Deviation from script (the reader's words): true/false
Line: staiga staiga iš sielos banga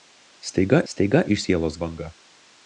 false